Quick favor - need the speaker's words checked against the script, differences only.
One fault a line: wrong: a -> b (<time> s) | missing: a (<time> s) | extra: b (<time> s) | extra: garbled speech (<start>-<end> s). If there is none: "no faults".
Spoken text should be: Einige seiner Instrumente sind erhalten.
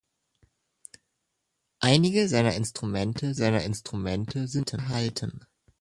extra: seiner Instrumente (3.3 s)